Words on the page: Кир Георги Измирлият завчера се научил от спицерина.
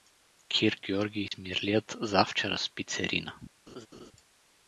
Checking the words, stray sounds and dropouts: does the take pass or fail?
fail